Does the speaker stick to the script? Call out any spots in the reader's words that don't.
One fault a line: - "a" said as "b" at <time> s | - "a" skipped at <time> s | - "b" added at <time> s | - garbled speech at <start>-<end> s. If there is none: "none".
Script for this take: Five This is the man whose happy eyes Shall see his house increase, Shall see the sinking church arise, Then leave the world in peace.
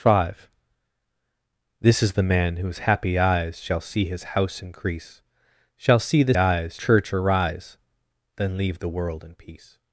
- "sinking" said as "eyes" at 6.4 s